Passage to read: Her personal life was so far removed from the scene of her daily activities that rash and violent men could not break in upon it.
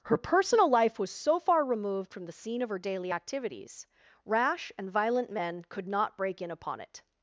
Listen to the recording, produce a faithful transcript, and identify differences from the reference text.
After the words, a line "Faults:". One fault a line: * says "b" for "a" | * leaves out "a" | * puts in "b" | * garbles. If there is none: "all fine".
Her personal life was so far removed from the scene of her daily activities rash and violent men could not break in upon it.
Faults:
* leaves out "that"